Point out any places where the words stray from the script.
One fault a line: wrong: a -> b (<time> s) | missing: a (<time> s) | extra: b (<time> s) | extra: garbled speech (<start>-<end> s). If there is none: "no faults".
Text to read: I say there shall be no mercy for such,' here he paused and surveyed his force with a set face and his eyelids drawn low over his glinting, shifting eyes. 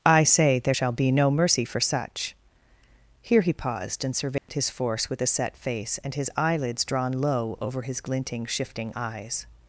no faults